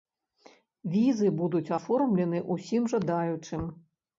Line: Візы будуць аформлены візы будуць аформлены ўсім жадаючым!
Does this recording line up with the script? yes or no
no